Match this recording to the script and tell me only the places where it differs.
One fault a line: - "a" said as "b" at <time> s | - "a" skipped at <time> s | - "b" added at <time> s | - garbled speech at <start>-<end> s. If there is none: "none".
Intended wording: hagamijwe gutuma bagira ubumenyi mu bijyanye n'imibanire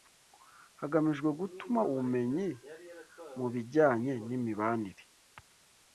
- "bagira" skipped at 1.8 s